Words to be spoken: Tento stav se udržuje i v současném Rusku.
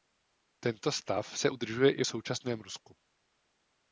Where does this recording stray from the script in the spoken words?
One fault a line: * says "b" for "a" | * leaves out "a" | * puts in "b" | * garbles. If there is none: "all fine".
all fine